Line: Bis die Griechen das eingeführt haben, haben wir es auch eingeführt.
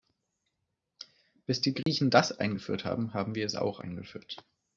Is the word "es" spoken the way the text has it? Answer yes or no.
yes